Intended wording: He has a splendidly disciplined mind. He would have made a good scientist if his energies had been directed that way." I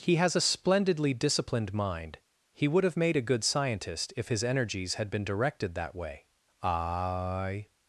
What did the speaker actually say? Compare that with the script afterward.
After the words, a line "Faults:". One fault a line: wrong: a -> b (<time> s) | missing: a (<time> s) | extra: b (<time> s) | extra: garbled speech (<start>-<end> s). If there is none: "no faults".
He has a splendidly disciplined mind. He would have made a good scientist if his energies had been directed that way." I
Faults:
no faults